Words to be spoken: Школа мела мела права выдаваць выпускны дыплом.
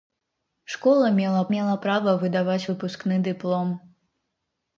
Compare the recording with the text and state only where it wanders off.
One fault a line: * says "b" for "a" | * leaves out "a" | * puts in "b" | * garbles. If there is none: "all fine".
all fine